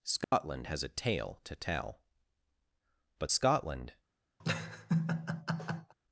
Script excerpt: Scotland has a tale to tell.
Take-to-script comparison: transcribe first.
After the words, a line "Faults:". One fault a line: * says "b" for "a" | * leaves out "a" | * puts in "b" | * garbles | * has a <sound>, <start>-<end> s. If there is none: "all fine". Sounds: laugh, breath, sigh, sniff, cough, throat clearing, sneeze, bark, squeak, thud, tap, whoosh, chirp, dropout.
Scotland has a tale to tell. But Scotland
Faults:
* has a dropout, 0.2-0.3 s
* puts in "But Scotland"
* has a laugh, 4.4-5.9 s